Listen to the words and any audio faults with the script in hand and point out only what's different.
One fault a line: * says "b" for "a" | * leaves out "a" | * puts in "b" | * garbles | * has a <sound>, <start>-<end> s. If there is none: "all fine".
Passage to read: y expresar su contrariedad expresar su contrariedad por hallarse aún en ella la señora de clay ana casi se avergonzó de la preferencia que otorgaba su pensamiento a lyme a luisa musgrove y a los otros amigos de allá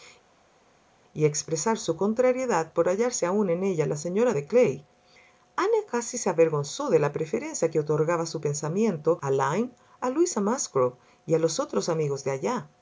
* leaves out "expresar su contrariedad"